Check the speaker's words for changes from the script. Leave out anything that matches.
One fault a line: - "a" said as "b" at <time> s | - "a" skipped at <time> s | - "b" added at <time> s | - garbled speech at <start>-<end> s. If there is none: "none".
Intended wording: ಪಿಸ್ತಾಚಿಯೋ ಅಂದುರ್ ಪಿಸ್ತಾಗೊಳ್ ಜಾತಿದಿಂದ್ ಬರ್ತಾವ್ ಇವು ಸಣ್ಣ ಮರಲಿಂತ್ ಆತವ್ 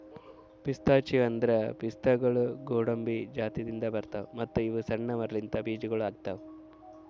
- "ಗೋಡಂಬಿ" added at 2.6 s
- "ಮತ್ತ" added at 4.3 s
- "ಬೀಜಗೊಳ್" added at 5.6 s